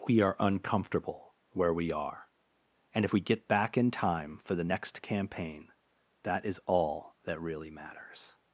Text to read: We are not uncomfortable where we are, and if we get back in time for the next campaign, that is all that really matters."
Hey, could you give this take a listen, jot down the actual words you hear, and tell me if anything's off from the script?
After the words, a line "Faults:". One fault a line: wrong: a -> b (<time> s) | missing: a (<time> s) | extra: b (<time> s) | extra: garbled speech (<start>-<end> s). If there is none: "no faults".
We are uncomfortable where we are, and if we get back in time for the next campaign, that is all that really matters."
Faults:
missing: not (0.3 s)